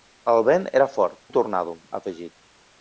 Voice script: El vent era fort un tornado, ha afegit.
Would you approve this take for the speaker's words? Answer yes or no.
yes